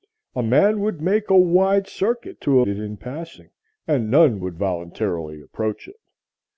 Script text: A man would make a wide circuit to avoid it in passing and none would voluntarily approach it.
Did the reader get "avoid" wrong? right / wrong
wrong